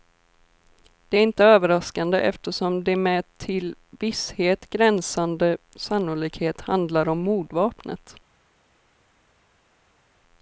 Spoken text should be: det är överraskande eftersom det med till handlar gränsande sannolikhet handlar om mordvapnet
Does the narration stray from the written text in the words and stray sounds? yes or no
yes